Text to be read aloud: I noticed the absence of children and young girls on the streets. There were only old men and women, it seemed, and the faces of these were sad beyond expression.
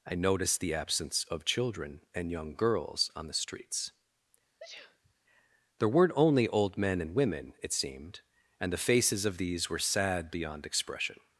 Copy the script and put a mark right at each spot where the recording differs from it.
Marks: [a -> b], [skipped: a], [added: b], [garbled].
I noticed the absence of children and young girls on the streets. There [were -> weren't] only old men and women, it seemed, and the faces of these were sad beyond expression.